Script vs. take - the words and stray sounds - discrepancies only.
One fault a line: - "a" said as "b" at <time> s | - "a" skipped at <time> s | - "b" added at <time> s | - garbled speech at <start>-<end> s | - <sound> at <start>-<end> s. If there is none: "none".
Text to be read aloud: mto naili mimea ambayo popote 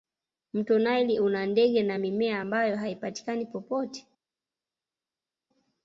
- "una ndege na" added at 1.2 s
- "haipatikani" added at 2.8 s